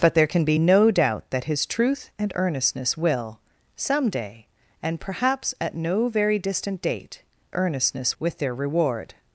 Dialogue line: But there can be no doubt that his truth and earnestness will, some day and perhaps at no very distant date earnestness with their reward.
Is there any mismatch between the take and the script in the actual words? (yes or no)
no